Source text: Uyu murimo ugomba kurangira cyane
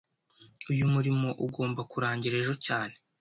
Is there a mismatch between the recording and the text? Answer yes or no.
yes